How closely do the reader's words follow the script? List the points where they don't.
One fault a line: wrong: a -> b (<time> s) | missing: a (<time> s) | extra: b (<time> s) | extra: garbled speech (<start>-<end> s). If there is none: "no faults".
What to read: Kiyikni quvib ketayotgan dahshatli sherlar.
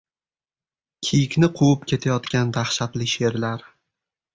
no faults